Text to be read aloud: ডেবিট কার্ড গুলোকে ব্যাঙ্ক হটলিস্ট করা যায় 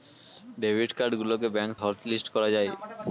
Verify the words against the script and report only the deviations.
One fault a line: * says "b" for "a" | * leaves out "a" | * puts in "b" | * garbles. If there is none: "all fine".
all fine